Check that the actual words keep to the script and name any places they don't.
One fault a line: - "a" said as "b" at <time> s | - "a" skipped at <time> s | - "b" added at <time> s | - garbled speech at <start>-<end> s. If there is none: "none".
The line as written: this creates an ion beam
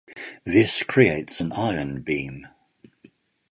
none